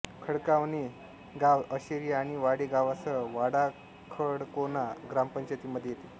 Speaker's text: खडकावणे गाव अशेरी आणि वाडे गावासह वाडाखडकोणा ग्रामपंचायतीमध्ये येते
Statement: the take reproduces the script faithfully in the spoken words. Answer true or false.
true